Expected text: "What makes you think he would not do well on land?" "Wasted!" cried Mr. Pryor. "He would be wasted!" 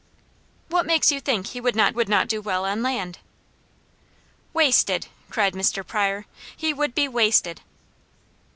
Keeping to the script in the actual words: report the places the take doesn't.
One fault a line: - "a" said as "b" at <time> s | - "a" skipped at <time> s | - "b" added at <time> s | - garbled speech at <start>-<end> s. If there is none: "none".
- "would not" added at 1.9 s